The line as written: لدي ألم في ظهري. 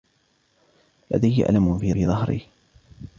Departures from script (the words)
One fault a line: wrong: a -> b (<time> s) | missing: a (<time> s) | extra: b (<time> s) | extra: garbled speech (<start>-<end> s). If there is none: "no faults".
extra: في (1.9 s)